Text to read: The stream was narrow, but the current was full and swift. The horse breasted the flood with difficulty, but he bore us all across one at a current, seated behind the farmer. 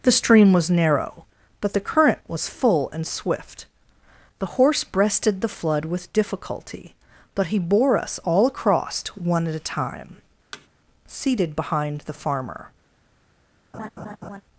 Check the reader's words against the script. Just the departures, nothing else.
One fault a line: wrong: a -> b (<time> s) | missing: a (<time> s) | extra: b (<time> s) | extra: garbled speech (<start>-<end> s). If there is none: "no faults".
wrong: current -> time (9.6 s)